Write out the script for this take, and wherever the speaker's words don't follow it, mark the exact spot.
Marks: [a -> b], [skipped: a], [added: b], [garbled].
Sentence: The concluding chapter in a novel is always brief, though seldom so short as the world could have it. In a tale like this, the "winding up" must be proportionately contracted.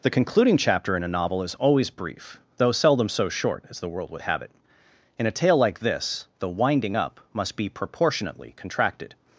The concluding chapter in a novel is always brief, though seldom so short as the world [could -> would] have it. In a tale like this, the "winding up" must be proportionately contracted.